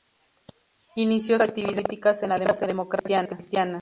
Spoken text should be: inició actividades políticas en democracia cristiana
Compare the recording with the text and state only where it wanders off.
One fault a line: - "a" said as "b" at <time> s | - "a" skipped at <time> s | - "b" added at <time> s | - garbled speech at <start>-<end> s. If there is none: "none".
none